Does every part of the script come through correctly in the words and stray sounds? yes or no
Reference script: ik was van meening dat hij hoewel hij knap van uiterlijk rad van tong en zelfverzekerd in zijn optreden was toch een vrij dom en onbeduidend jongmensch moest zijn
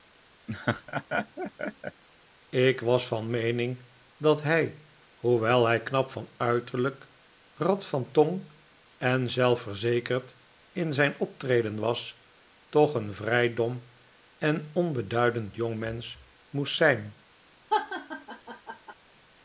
no